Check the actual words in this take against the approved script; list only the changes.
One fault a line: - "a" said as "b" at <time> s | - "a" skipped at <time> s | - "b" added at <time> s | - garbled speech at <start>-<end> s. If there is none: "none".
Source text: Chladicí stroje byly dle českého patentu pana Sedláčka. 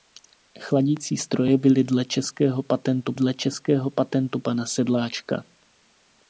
- "dle českého patentu" added at 3.1 s